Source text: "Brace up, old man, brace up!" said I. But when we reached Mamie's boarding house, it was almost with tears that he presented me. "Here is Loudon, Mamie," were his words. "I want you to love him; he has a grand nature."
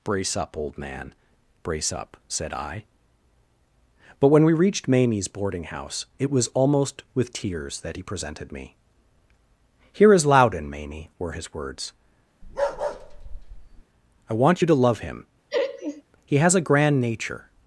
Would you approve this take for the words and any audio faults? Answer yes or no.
no